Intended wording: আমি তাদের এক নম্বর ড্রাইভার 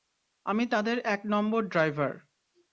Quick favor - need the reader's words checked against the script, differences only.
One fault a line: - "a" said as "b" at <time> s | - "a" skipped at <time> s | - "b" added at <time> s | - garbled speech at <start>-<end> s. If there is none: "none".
none